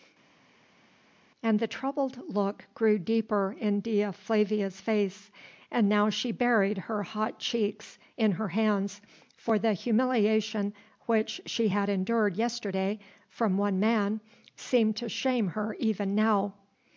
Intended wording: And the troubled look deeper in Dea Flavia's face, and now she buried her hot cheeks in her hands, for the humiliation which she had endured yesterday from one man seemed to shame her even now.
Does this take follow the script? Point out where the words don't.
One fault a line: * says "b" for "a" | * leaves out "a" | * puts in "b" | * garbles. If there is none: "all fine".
* puts in "grew"